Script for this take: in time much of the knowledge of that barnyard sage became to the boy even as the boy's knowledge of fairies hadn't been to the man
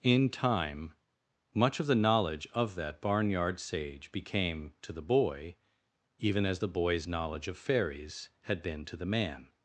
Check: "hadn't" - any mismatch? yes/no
yes